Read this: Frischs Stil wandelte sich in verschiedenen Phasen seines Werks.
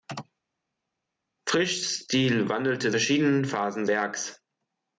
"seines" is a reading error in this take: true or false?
true